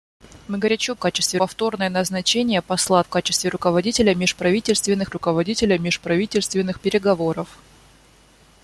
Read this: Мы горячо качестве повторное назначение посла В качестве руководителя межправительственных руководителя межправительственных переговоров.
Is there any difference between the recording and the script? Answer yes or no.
no